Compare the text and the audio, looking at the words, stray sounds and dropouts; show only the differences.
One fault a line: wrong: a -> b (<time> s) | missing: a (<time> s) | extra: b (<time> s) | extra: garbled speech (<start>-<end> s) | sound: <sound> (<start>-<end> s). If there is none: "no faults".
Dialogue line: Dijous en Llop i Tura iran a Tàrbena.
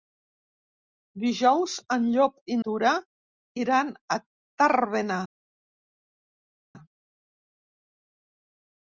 no faults